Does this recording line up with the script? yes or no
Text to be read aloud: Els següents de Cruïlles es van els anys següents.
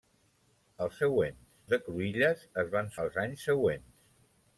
yes